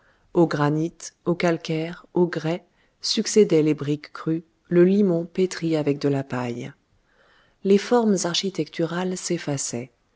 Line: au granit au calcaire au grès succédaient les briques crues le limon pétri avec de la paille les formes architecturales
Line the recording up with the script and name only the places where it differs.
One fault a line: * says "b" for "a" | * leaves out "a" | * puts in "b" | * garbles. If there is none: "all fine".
all fine